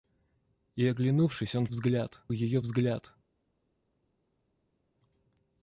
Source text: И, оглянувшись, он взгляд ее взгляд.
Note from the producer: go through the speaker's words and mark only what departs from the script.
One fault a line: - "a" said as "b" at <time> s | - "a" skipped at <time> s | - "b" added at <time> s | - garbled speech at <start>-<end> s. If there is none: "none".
none